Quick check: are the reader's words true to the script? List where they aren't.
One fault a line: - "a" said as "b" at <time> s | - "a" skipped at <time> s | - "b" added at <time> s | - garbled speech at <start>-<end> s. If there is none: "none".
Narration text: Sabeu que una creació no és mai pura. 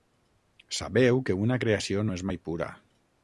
none